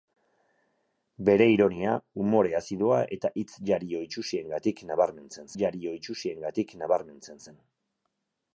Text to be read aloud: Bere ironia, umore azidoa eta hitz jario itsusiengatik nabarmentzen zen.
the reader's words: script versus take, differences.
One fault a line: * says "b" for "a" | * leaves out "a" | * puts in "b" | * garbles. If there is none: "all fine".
* puts in "jario itsusiengatik nabarmentzen"